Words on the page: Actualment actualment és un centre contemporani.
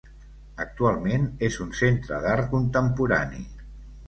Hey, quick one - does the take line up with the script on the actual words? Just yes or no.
no